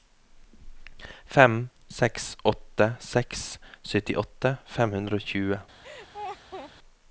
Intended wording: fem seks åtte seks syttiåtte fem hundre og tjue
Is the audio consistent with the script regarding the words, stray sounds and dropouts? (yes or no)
no